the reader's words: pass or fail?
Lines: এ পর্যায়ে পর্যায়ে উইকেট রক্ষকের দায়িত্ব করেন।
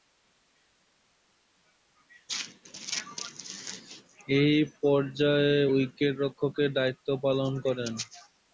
fail